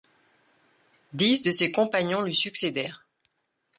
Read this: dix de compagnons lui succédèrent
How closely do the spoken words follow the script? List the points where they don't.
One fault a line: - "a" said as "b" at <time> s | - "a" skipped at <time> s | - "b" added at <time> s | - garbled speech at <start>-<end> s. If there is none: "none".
- "ses" added at 1.5 s